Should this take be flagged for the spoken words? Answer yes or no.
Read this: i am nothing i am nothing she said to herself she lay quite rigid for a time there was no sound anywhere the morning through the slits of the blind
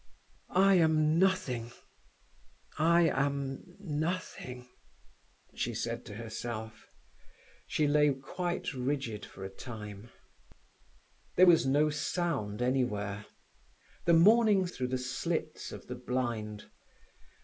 no